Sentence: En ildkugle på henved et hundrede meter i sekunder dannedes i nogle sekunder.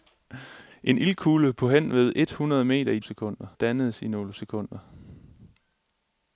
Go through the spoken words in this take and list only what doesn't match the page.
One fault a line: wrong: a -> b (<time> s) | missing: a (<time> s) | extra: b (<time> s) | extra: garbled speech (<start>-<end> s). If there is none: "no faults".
no faults